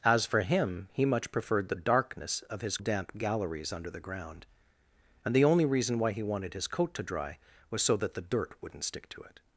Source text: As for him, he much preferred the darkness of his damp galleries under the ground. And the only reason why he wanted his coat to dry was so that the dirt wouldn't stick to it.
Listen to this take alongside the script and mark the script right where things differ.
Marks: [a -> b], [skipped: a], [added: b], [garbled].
As for him, he much preferred the darkness of his damp galleries under the ground. And the only reason why he wanted his coat to dry was so that the dirt wouldn't stick to it.